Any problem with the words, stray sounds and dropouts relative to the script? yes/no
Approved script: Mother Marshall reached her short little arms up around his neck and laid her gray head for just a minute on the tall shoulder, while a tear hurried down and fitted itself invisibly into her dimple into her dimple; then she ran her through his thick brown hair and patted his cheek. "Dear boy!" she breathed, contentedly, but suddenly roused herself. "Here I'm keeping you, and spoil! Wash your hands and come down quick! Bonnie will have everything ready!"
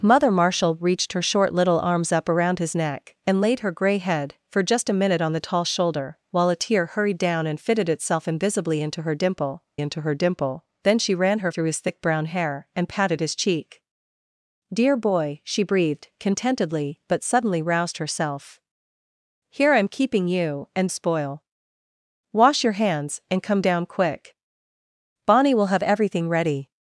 no